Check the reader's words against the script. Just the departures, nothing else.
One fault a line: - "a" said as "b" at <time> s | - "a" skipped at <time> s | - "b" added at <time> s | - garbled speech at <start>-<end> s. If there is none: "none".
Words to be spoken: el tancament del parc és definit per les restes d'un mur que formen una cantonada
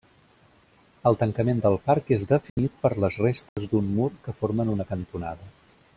none